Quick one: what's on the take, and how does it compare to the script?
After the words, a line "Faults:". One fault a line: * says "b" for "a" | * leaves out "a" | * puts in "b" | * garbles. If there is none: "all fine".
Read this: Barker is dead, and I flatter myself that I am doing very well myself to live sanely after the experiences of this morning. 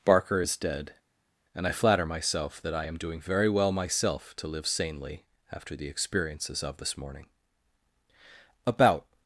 Barker is dead, and I flatter myself that I am doing very well myself to live sanely after the experiences of this morning. "About
Faults:
* puts in "About"